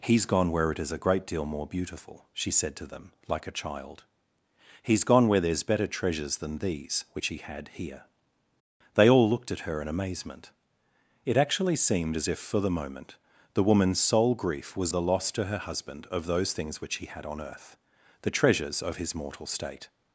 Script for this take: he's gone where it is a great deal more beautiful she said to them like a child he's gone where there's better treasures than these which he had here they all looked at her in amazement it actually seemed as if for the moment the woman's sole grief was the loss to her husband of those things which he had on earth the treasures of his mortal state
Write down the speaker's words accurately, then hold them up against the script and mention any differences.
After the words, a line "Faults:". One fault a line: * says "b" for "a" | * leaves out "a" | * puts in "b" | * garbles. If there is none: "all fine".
he's gone where it is a great deal more beautiful she said to them like a child he's gone where there's better treasures than these which he had here they all looked at her in amazement it actually seemed as if for the moment the woman's sole grief was the loss to her husband of those things which he had on earth the treasures of his mortal state
Faults:
all fine